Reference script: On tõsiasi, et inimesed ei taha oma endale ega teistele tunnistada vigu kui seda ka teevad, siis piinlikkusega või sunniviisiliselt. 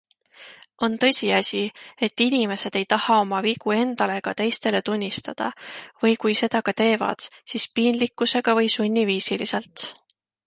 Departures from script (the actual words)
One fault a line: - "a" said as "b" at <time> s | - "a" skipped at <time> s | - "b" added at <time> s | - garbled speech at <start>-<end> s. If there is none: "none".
- "vigu" added at 3.5 s
- "vigu" said as "või" at 6.0 s